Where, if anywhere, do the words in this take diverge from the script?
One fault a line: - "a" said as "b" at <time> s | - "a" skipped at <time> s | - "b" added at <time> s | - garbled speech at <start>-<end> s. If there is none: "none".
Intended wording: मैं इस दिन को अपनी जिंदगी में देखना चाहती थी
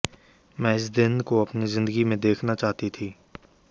none